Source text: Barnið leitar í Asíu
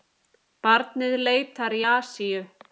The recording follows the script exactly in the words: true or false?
true